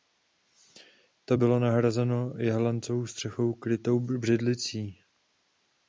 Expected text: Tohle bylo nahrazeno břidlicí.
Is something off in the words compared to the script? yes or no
yes